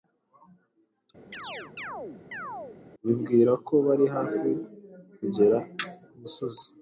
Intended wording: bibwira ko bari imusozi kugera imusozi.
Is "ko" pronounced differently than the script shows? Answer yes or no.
no